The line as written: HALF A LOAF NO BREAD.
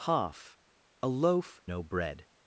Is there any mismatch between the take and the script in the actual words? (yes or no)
no